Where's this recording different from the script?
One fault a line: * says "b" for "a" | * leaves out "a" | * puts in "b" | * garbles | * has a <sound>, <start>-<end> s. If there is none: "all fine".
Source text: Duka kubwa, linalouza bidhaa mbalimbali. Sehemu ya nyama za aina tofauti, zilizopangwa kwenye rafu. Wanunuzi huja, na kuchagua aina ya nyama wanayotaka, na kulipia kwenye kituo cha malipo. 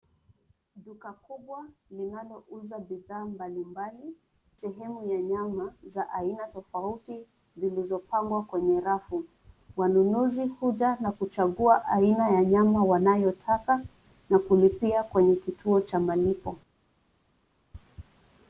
all fine